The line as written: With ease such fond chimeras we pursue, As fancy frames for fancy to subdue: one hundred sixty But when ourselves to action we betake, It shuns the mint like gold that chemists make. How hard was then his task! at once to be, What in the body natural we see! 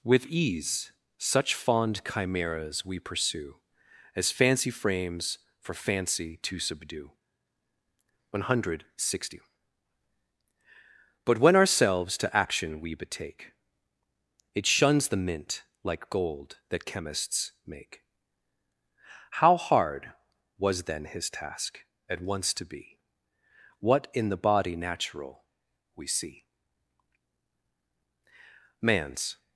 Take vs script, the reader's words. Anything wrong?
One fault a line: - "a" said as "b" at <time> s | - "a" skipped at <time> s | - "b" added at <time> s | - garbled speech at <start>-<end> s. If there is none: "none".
- "Man's" added at 28.8 s